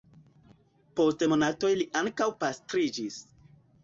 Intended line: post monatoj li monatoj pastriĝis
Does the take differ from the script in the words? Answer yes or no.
yes